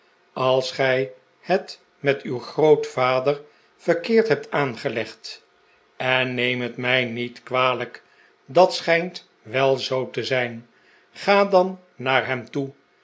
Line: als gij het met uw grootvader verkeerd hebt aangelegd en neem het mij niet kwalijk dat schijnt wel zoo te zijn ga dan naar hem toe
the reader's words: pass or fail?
pass